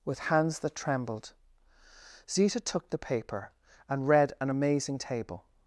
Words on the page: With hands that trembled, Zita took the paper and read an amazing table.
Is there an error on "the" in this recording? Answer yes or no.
no